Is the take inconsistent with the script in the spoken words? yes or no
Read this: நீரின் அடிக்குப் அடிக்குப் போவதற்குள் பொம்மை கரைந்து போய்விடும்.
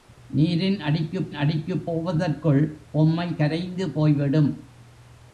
no